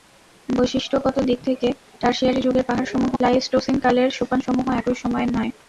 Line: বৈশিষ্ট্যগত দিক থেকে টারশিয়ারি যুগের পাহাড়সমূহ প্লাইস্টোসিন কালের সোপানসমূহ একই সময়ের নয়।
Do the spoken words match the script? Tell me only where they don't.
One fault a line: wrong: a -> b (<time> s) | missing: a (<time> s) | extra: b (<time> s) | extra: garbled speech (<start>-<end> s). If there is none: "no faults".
no faults